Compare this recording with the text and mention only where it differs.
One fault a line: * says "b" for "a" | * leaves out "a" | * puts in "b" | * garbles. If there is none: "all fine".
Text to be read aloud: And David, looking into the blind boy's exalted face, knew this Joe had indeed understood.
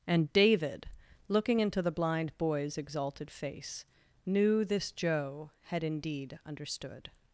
all fine